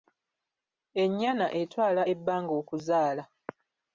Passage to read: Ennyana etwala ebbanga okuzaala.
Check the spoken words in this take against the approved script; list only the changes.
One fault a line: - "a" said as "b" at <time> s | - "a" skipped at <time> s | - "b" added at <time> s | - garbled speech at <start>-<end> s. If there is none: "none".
none